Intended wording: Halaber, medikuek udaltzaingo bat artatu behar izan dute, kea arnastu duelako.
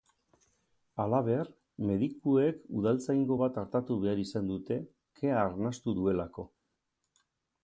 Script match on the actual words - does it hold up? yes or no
yes